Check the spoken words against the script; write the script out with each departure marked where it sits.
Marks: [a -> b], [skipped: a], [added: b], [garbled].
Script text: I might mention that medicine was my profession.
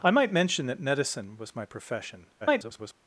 I might mention that medicine was my profession. [garbled]